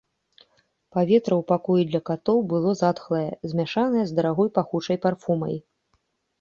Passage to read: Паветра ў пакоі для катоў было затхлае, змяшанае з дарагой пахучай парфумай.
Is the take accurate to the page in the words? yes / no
yes